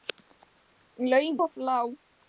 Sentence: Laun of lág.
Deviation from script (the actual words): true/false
false